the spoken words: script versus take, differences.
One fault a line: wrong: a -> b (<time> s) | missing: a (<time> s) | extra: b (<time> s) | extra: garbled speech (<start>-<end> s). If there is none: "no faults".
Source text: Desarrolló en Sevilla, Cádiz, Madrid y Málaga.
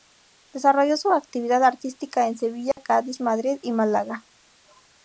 extra: su actividad artística (1.0 s)